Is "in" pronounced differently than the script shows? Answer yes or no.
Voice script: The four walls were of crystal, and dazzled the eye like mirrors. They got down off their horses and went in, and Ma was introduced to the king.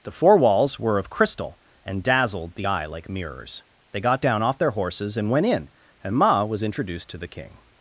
no